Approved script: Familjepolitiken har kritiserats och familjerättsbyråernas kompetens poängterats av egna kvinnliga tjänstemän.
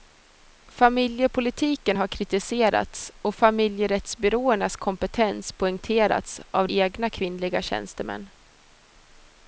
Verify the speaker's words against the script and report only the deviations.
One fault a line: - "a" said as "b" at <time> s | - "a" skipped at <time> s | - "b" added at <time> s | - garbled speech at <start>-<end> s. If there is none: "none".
none